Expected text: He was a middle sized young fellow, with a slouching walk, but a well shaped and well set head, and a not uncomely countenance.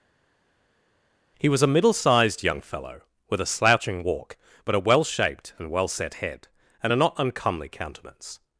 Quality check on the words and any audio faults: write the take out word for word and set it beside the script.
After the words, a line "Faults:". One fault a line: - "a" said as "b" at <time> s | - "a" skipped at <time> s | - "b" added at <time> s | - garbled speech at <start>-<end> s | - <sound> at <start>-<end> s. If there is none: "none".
He was a middle sized young fellow, with a slouching walk, but a well shaped and well set head, and a not uncomely countenance.
Faults:
none